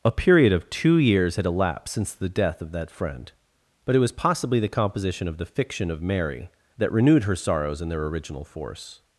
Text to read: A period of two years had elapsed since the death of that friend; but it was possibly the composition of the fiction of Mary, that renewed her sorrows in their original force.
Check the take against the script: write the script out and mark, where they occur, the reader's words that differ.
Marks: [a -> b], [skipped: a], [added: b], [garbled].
A period of two years had elapsed since the death of that friend; but it was possibly the composition of the fiction of Mary, that renewed her sorrows in their original force.